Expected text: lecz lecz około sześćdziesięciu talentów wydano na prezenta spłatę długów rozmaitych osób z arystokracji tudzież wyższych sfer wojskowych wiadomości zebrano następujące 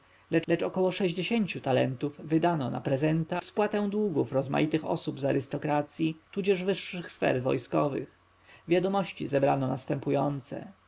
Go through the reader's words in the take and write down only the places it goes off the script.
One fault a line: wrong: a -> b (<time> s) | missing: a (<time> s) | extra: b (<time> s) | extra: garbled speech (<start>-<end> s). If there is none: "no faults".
no faults